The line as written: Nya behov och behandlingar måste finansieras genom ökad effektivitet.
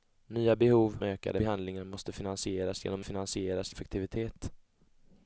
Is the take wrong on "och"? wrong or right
wrong